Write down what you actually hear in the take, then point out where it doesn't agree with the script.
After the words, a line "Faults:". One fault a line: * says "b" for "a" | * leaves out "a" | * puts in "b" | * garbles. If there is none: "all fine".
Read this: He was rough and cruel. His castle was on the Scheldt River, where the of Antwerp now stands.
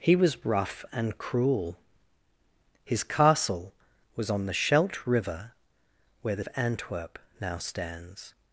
He was rough and cruel. His castle was on the Scheldt River, where the of Antwerp now stands.
Faults:
all fine